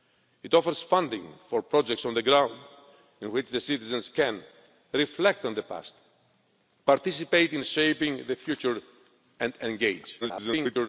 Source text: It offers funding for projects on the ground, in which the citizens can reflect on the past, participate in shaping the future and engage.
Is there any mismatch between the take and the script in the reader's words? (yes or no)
yes